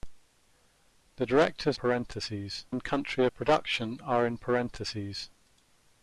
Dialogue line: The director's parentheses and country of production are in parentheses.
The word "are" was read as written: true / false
true